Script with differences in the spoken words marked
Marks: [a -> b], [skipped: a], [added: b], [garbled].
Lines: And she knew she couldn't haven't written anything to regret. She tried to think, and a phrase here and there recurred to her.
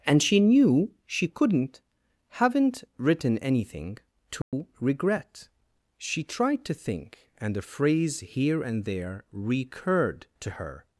And she knew she couldn't haven't written anything to regret. She tried to think, and a phrase here and there recurred to her.